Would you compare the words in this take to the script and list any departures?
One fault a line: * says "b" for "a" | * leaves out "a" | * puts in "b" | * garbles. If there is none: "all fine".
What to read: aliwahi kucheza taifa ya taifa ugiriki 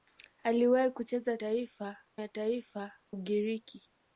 all fine